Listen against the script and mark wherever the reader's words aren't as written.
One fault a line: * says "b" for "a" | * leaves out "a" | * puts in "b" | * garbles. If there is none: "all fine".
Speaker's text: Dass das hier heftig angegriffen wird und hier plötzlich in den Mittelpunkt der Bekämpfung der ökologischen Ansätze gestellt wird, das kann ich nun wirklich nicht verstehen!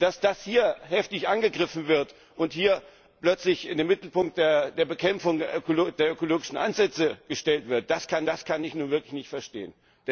* puts in "das kann"